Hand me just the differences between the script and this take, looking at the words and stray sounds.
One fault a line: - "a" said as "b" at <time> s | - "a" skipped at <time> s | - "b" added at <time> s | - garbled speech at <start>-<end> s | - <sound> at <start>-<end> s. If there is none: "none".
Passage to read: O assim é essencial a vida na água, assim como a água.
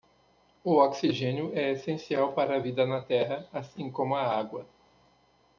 - "assim" said as "oxigênio" at 0.8 s
- "para" added at 2.3 s
- "água" said as "terra" at 3.0 s